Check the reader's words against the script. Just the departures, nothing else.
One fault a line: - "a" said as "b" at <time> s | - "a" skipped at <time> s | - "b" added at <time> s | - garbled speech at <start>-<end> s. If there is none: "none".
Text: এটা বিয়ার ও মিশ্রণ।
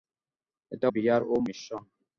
none